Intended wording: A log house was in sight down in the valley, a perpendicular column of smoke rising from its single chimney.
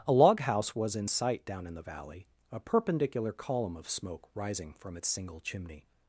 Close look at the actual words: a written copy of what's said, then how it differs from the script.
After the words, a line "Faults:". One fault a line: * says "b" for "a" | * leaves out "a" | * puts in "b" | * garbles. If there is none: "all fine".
A log house was in sight down in the valley, a perpendicular column of smoke rising from its single chimney.
Faults:
all fine